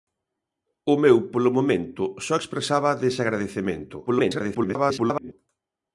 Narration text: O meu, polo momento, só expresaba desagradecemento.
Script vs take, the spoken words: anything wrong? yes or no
yes